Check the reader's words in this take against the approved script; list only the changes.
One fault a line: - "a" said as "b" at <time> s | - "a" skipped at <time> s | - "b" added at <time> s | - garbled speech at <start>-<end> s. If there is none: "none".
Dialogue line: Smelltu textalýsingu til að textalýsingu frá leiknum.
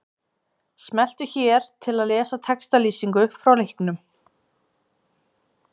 - "textalýsingu" said as "hér" at 1.3 s
- "lesa" added at 2.1 s